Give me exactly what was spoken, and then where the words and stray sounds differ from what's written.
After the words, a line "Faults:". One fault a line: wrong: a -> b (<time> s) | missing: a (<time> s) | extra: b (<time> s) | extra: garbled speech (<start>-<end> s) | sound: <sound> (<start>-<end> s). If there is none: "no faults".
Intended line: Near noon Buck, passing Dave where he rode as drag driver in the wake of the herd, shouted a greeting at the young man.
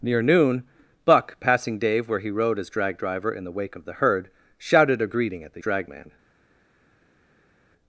Near noon Buck, passing Dave where he rode as drag driver in the wake of the herd, shouted a greeting at the drag man.
Faults:
wrong: young -> drag (5.6 s)